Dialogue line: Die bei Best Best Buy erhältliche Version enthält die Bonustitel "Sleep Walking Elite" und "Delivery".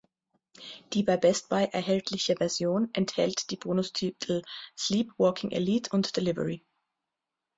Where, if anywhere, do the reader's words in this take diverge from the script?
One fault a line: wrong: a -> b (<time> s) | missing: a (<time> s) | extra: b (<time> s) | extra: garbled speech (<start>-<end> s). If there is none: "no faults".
missing: Best (1.5 s)